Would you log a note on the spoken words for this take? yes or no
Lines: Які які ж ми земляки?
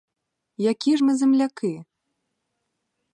yes